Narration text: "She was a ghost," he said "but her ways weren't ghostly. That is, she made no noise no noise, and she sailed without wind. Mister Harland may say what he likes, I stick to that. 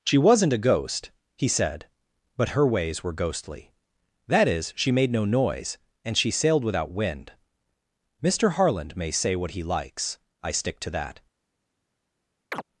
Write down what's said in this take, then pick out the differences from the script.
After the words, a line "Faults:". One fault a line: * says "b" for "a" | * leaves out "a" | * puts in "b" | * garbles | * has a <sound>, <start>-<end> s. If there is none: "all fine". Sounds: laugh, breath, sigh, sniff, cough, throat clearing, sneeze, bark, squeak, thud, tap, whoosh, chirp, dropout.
"She wasn't a ghost," he said "but her ways were ghostly. That is, she made no noise, and she sailed without wind. Mister Harland may say what he likes, I stick to that.
Faults:
* says "wasn't" for "was"
* says "were" for "weren't"
* leaves out "no noise"
* has a chirp, 12.5-12.6 s